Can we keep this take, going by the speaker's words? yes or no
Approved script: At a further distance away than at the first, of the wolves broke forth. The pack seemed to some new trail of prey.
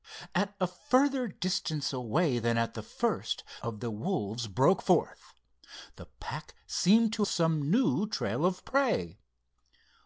yes